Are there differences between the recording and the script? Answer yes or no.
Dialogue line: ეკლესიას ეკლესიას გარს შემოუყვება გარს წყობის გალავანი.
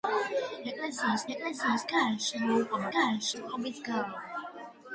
no